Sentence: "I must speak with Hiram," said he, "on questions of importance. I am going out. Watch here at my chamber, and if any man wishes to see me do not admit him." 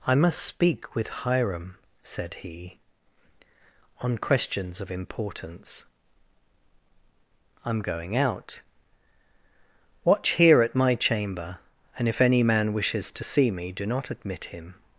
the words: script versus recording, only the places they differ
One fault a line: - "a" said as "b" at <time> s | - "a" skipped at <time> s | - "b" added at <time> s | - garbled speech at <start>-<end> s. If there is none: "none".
none